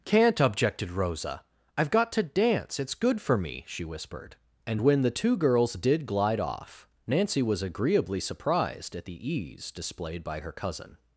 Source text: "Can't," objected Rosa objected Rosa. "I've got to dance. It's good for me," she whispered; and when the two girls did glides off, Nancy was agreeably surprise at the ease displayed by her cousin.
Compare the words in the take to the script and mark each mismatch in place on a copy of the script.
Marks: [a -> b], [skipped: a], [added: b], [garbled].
"Can't," objected Rosa [skipped: objected Rosa.] "I've got to dance. It's good for me," she whispered; and when the two girls did [glides -> glide] off, Nancy was agreeably [surprise -> surprised] at the ease displayed by her cousin.